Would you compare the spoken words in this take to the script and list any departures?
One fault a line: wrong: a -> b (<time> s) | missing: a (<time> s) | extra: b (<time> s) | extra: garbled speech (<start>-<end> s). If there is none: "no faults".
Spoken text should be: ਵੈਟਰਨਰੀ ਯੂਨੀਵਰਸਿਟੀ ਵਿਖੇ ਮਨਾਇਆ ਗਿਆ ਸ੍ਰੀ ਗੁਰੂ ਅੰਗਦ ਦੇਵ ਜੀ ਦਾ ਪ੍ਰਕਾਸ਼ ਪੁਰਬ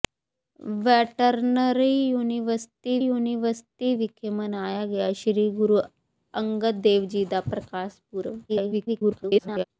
extra: ਯੂਨੀਵਰਸਿਟੀ (3.0 s)
extra: garbled speech (8.5-9.6 s)